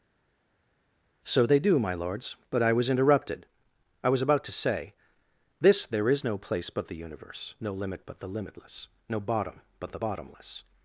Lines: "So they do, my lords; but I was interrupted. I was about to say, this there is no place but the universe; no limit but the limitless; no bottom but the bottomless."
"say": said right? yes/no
yes